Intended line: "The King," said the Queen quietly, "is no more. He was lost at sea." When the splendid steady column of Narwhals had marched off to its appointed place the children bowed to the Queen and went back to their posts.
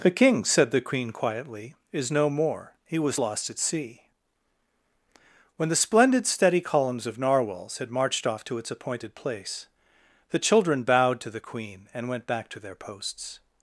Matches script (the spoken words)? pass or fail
fail